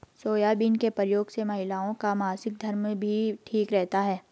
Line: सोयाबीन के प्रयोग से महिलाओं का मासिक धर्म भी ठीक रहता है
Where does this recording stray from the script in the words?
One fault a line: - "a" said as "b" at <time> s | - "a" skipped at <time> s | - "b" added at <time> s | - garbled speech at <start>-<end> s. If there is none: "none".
none